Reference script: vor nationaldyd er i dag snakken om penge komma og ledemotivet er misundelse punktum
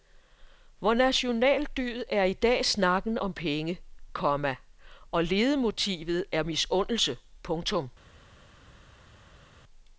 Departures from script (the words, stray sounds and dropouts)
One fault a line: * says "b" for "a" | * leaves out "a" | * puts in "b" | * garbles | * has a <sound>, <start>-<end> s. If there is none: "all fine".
all fine